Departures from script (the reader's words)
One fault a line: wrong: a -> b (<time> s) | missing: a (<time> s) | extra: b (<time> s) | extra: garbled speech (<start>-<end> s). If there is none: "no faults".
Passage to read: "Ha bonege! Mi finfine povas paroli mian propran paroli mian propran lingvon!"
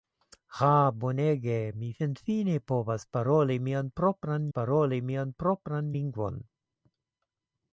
no faults